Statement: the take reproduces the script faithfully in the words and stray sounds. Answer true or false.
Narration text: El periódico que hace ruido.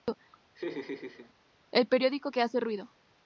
false